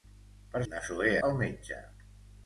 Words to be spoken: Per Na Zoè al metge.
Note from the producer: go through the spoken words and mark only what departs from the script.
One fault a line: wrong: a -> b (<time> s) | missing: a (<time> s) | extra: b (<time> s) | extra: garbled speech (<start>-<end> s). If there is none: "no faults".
no faults